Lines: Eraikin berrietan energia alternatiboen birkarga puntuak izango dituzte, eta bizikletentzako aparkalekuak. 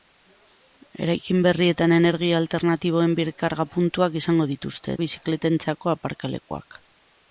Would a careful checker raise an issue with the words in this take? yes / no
yes